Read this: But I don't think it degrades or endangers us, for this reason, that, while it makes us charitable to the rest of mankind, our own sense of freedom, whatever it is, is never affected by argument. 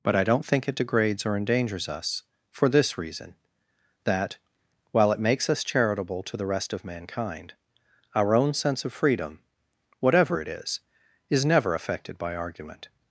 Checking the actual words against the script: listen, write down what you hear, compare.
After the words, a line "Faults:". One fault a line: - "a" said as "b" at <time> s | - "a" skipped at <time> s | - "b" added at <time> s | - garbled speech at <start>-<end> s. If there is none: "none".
But I don't think it degrades or endangers us, for this reason, that, while it makes us charitable to the rest of mankind, our own sense of freedom, whatever it is, is never affected by argument.
Faults:
none